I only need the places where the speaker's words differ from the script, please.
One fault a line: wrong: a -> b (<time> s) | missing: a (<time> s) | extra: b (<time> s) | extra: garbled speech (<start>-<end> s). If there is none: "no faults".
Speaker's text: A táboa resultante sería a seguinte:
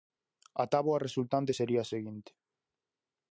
no faults